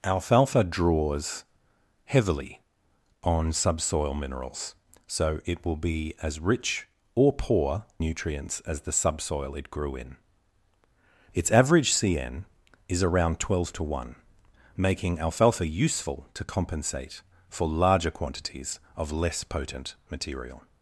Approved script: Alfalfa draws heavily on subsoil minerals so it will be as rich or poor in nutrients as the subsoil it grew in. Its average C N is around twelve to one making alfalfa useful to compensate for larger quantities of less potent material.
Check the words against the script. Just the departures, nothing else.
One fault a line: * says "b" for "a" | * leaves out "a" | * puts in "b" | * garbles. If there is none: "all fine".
* leaves out "in"